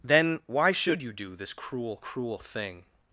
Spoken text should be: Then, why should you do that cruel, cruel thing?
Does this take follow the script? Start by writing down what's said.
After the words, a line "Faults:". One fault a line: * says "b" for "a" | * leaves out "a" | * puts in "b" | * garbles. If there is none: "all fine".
Then, why should you do this cruel, cruel thing?
Faults:
* says "this" for "that"